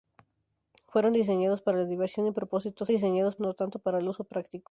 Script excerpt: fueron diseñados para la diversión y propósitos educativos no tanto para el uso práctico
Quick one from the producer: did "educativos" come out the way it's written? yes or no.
no